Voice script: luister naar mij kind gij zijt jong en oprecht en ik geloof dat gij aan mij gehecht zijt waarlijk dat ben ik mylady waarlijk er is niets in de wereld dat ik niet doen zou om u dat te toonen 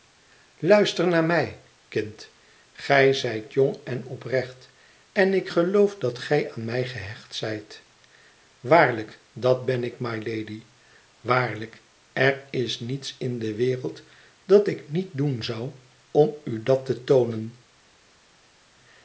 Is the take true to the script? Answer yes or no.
yes